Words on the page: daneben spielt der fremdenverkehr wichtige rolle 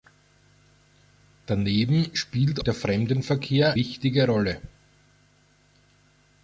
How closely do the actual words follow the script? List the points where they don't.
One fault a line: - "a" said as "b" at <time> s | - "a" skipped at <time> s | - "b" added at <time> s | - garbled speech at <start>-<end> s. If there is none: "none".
none